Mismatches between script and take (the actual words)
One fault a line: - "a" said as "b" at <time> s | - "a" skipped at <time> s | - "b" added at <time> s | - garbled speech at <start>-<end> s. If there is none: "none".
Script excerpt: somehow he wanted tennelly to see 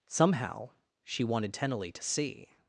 - "he" said as "she" at 1.0 s